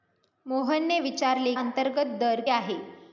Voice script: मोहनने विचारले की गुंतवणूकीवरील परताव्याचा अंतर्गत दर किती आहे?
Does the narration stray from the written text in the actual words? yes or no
yes